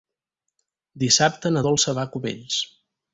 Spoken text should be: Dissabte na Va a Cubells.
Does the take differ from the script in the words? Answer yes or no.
yes